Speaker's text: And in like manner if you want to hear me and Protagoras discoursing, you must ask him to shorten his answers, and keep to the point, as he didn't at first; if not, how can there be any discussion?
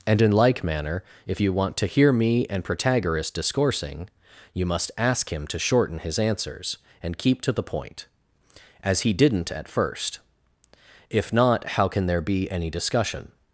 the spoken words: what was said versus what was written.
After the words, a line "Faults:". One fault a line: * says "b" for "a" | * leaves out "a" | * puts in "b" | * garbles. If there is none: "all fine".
And in like manner if you want to hear me and Protagoras discoursing, you must ask him to shorten his answers, and keep to the point, as he didn't at first; if not, how can there be any discussion?
Faults:
all fine